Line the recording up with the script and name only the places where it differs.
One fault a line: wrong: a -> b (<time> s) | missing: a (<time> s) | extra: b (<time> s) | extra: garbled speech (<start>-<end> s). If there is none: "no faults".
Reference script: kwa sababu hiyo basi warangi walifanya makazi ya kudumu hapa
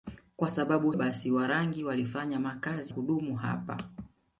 missing: hiyo (0.9 s)
missing: ya (2.9 s)